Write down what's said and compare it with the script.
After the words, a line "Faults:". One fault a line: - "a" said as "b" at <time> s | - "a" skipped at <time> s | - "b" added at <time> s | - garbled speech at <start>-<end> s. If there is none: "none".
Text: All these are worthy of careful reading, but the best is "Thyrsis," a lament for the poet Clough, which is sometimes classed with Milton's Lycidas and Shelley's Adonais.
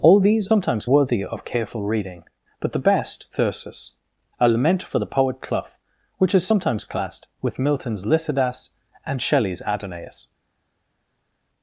All these sometimes worthy of careful reading, but the best "Thyrsis," a lament for the poet Clough, which is sometimes classed with Milton's Lycidas and Shelley's Adonais.
Faults:
- "are" said as "sometimes" at 0.5 s
- "is" skipped at 3.3 s